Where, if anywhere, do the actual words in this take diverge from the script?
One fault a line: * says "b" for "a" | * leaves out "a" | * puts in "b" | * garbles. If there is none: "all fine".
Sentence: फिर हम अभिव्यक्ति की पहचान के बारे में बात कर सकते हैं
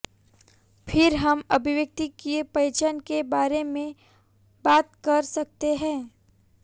all fine